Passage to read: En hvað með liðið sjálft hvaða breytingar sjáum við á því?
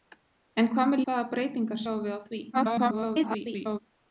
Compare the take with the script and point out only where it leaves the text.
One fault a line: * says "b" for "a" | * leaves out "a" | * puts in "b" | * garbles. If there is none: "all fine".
* leaves out "liðið sjálft"
* garbles